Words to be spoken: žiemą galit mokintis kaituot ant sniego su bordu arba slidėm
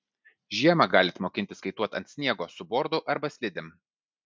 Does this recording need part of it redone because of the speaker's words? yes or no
no